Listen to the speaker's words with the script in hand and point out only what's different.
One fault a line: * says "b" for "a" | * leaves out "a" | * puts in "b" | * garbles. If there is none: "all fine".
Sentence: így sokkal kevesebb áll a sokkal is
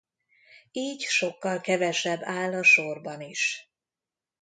* says "sorban" for "sokkal"